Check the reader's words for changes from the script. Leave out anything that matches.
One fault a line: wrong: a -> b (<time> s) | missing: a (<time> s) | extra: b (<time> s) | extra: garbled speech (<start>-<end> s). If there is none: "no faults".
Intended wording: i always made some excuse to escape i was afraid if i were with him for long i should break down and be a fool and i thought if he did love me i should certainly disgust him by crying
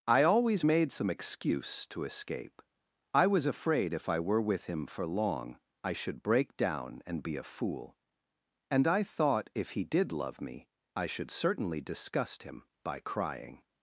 no faults